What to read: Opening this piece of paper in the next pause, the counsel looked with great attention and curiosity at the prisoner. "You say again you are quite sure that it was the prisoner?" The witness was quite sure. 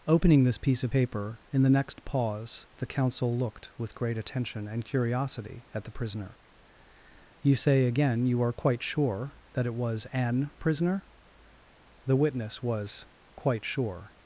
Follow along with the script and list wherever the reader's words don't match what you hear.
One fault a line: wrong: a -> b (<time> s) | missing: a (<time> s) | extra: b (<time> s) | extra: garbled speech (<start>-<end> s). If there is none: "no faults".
wrong: the -> an (10.1 s)